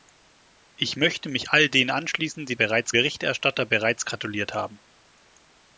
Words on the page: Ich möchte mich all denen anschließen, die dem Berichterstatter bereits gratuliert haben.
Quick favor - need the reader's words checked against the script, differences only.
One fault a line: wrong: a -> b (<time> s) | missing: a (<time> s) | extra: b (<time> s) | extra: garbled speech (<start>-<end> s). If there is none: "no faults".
wrong: dem -> bereits (2.5 s)